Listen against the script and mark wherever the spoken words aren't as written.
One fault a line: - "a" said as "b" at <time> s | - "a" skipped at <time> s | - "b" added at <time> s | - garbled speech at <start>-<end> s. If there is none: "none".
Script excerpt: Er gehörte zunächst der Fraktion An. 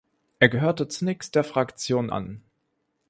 none